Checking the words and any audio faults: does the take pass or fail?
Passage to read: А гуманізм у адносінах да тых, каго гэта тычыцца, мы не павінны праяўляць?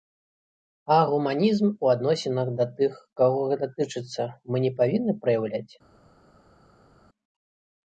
pass